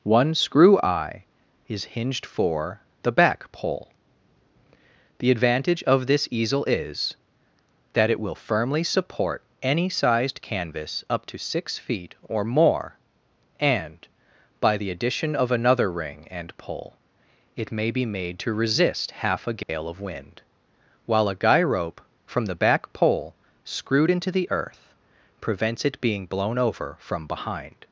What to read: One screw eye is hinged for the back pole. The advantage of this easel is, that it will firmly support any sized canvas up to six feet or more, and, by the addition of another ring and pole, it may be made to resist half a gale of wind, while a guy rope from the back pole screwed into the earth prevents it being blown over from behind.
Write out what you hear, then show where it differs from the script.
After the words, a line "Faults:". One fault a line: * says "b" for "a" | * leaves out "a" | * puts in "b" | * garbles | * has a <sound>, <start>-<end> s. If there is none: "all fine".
One screw eye is hinged for the back pole. The advantage of this easel is, that it will firmly support any sized canvas up to six feet or more, and, by the addition of another ring and pole, it may be made to resist half a gale of wind, while a guy rope from the back pole screwed into the earth prevents it being blown over from behind.
Faults:
* has a dropout, 19.6-19.7 s